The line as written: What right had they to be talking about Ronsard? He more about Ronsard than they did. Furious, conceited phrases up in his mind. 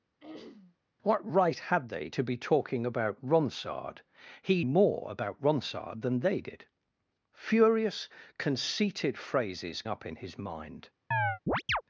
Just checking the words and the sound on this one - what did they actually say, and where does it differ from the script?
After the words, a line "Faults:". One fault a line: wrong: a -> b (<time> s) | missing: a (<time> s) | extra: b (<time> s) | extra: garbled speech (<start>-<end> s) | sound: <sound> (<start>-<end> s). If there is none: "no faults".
What right had they to be talking about Ronsard? He more about Ronsard than they did. Furious, conceited phrases up in his mind.
Faults:
sound: throat clearing (0.2-0.8 s)
sound: chirp (11.1-11.8 s)